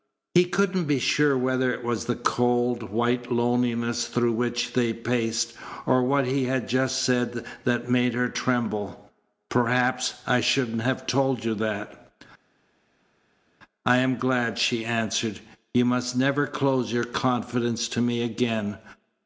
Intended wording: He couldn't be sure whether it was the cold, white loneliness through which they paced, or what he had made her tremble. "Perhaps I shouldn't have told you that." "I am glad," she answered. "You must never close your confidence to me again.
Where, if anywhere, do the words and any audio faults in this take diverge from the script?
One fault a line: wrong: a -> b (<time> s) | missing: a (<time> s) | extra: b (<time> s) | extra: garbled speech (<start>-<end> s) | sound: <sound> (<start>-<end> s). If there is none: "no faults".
extra: just said that (6.7 s)